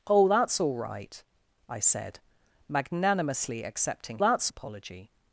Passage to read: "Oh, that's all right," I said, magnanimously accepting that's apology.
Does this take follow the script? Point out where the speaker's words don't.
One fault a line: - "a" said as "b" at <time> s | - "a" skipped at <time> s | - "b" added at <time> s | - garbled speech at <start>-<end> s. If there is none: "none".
none